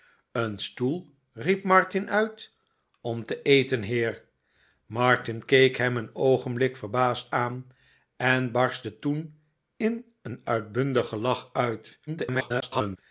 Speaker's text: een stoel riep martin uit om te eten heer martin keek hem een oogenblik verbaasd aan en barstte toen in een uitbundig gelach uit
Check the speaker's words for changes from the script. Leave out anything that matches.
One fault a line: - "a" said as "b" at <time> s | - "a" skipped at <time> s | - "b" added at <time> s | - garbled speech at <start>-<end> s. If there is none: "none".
- garbled speech at 12.1-13.0 s